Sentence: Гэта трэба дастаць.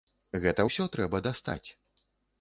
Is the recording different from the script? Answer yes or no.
yes